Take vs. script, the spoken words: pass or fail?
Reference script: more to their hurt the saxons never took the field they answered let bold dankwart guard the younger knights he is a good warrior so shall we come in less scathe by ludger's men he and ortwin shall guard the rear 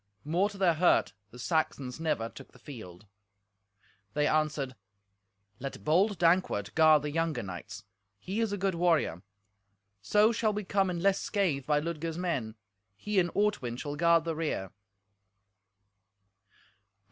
pass